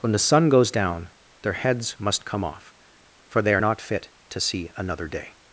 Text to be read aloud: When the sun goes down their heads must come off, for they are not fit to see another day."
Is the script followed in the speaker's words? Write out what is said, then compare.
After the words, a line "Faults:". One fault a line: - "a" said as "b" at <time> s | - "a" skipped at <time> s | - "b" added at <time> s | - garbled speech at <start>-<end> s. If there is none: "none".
When the sun goes down their heads must come off, for they are not fit to see another day."
Faults:
none